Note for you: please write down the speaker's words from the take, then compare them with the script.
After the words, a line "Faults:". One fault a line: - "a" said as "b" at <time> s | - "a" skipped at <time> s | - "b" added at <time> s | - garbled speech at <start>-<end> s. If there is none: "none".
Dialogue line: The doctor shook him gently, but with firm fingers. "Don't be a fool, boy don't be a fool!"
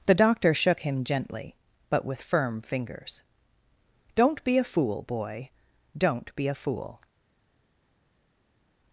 The doctor shook him gently, but with firm fingers. "Don't be a fool, boy don't be a fool!"
Faults:
none